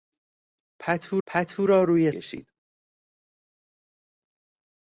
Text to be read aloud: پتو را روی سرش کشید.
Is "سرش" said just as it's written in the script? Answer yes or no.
no